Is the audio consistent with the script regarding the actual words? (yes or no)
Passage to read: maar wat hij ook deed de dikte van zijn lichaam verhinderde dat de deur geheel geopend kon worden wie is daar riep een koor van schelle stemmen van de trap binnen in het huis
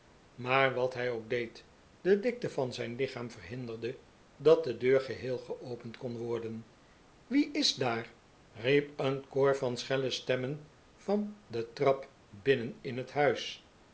yes